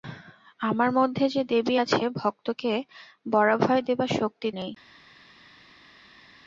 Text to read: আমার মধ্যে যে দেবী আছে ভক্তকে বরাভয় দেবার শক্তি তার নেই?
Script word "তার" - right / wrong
wrong